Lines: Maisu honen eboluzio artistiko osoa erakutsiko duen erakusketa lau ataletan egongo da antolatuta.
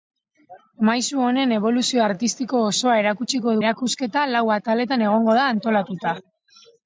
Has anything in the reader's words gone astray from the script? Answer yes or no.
yes